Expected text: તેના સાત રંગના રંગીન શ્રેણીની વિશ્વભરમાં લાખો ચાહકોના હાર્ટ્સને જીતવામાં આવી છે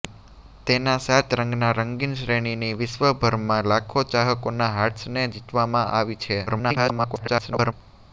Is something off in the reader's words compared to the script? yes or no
yes